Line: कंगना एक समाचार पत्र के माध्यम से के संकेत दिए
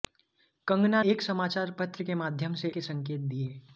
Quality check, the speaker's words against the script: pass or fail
pass